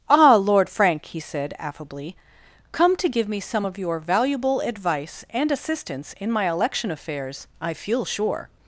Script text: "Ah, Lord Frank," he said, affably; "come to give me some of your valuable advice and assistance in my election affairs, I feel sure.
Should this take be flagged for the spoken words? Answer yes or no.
no